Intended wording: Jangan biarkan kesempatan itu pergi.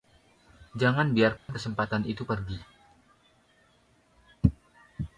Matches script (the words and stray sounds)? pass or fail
fail